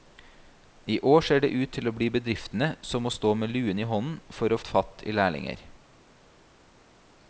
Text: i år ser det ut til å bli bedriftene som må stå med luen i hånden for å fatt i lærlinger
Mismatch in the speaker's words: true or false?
false